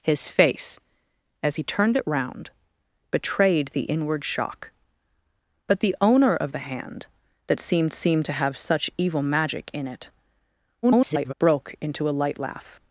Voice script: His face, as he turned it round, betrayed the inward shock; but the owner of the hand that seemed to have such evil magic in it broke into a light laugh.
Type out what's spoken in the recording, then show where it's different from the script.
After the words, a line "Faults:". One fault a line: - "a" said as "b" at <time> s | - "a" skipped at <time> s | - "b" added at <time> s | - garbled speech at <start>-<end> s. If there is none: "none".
His face, as he turned it round, betrayed the inward shock; but the owner of the hand that seemed seemed to have such evil magic in it [garbled] broke into a light laugh.
Faults:
- "seemed" added at 7.9 s
- garbled speech at 10.8-11.3 s